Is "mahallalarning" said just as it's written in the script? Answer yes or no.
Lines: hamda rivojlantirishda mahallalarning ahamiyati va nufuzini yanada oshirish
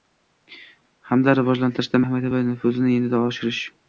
no